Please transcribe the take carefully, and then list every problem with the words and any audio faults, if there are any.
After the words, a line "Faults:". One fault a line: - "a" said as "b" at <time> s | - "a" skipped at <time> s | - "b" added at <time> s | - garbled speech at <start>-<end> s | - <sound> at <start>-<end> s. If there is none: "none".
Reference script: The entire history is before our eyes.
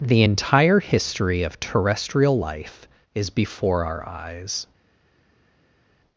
The entire history of terrestrial life is before our eyes.
Faults:
- "of terrestrial life" added at 1.4 s